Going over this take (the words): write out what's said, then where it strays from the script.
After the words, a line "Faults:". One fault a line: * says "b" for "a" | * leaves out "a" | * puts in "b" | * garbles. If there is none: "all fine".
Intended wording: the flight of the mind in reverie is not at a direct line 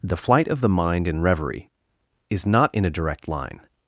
the flight of the mind in reverie is not in a direct line
Faults:
* says "in" for "at"